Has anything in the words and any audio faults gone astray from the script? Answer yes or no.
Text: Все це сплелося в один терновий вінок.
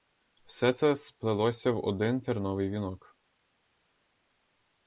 no